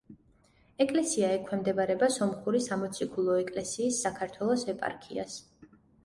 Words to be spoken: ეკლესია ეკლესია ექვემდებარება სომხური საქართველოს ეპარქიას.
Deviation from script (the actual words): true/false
true